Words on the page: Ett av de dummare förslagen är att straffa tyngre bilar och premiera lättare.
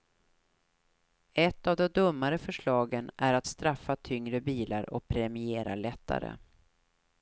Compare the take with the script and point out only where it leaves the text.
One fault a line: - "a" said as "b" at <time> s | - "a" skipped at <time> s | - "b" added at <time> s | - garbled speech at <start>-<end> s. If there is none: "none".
none